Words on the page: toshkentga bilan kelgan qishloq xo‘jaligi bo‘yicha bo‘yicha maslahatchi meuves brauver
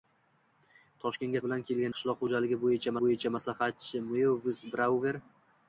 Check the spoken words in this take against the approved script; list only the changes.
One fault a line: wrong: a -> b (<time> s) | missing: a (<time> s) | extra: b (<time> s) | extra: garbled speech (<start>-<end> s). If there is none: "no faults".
no faults